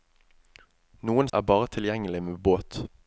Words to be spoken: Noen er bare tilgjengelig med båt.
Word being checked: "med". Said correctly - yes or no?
yes